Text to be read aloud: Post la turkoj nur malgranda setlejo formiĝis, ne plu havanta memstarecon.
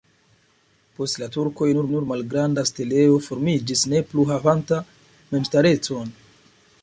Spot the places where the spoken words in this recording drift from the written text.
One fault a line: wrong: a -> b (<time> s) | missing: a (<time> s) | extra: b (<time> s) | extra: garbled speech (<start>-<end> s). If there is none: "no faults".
extra: nur (1.9 s)